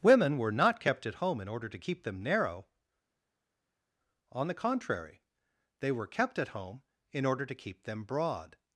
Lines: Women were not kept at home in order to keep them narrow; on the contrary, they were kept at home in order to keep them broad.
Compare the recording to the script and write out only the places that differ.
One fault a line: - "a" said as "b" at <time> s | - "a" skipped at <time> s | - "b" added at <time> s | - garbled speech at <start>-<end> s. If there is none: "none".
none